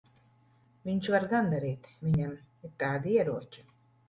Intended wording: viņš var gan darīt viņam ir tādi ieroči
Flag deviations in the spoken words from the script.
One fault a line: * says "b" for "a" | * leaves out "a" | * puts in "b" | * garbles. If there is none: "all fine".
all fine